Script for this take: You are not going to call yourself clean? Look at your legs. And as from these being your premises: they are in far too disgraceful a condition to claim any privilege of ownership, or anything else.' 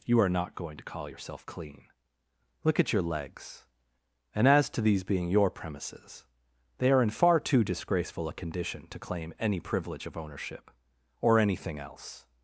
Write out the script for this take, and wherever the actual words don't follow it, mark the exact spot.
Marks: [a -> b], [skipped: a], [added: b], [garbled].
You are not going to call yourself clean? Look at your legs. And as [from -> to] these being your premises: they are in far too disgraceful a condition to claim any privilege of ownership, or anything else.'